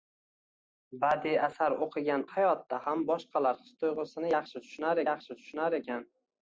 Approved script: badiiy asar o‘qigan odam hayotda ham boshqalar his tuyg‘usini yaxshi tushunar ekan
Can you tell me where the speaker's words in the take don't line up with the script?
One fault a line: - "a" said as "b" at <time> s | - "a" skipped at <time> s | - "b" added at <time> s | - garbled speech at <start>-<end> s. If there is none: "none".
- "odam" skipped at 2.2 s
- "yaxshi tushunar" added at 5.1 s